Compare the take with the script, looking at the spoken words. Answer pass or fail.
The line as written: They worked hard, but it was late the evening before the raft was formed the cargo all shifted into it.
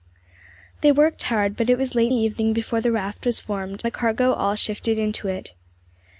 pass